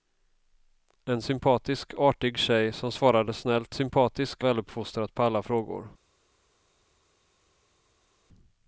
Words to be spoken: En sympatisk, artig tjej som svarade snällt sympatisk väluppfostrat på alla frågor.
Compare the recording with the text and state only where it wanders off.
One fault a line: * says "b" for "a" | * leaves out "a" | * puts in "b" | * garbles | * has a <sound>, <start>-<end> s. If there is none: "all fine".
all fine